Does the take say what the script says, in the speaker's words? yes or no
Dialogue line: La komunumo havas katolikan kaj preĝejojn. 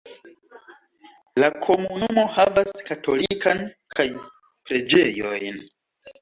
yes